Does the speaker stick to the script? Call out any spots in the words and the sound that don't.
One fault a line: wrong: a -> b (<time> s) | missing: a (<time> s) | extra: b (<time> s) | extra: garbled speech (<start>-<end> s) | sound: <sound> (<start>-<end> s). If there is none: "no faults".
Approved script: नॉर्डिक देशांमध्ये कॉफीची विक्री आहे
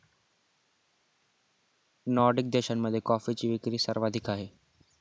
extra: सर्वाधिक (3.8 s)